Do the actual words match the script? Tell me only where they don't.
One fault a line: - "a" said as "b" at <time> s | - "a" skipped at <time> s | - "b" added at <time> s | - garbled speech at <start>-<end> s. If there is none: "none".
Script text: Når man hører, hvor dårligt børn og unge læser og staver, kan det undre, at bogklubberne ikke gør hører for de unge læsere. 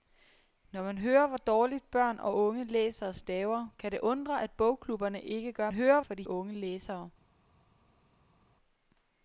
none